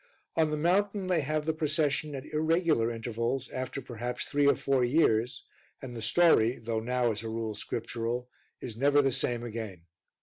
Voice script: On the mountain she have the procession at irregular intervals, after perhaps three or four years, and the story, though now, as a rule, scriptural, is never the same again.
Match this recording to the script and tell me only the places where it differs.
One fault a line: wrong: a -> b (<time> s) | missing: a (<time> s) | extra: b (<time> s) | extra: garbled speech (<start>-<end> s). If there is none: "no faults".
wrong: she -> they (1.1 s)